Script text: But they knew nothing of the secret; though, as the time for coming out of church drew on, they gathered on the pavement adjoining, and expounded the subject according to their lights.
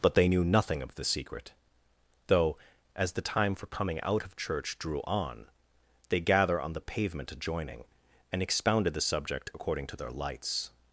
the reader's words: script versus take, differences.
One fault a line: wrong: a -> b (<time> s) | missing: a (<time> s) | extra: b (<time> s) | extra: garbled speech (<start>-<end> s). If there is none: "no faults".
wrong: gathered -> gather (6.2 s)